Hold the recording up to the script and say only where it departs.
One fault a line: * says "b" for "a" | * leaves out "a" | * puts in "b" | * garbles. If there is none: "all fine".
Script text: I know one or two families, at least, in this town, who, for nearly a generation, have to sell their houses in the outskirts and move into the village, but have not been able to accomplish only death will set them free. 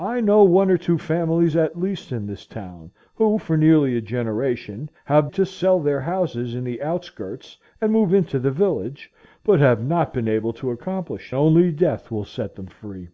all fine